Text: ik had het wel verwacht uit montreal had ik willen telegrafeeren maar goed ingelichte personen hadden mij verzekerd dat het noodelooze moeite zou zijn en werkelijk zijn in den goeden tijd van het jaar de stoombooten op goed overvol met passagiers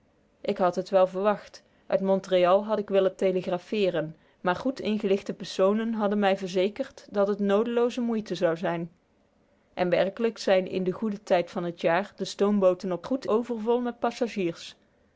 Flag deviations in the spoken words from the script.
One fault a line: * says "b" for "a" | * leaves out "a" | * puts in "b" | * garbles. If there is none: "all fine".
all fine